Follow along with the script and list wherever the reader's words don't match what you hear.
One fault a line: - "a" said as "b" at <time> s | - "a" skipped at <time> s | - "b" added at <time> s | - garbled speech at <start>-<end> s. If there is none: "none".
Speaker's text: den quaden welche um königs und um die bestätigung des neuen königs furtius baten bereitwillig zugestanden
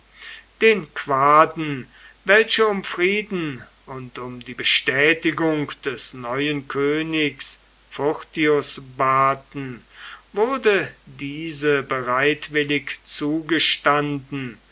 - "königs" said as "frieden" at 2.8 s
- "wurde diese" added at 10.3 s